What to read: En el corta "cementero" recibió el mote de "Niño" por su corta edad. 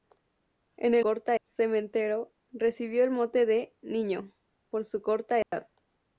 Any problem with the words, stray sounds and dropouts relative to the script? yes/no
yes